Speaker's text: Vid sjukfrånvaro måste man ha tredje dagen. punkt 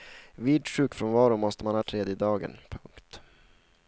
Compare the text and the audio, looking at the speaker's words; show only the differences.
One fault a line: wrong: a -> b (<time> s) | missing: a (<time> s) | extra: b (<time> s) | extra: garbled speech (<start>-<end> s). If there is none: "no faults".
no faults